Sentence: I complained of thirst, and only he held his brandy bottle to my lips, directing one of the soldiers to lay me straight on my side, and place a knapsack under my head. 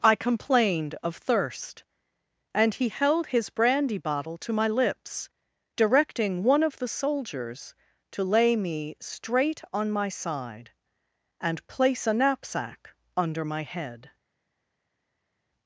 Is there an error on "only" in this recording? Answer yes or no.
yes